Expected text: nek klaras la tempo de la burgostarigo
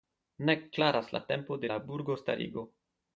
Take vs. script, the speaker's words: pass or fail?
pass